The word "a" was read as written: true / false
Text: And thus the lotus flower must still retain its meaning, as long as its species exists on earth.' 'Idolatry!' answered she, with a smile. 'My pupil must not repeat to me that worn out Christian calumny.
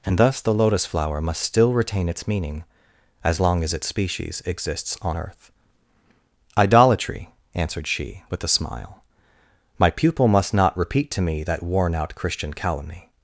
true